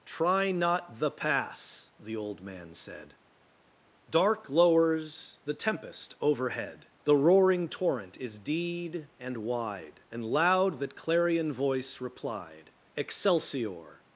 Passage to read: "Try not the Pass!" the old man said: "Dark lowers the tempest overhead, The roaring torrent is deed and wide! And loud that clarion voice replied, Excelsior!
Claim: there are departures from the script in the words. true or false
false